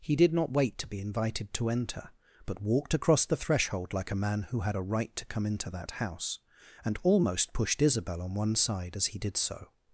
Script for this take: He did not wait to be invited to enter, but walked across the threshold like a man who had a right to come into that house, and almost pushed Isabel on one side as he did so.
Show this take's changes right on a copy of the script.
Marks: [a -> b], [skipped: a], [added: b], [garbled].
He did not wait to be invited to enter, but walked across the threshold like a man who had a right to come into that house, and almost pushed Isabel on one side as he did so.